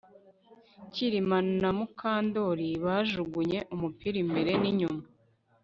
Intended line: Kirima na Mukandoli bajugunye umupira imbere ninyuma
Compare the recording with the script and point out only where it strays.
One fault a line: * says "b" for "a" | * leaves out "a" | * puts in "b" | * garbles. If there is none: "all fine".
all fine